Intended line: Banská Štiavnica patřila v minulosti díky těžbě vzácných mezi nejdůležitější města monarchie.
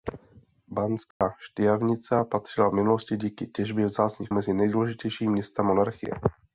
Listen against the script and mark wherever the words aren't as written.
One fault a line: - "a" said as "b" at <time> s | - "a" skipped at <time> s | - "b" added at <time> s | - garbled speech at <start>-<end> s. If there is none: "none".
none